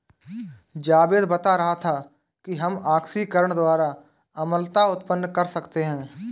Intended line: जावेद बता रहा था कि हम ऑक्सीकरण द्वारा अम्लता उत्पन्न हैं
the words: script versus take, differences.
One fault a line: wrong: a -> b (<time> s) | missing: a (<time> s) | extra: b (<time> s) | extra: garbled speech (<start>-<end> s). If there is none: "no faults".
extra: कर सकते (5.3 s)